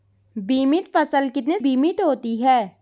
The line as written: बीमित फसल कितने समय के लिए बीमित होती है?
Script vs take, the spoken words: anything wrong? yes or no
yes